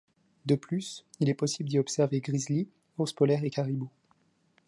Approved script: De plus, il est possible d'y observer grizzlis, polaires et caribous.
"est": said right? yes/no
yes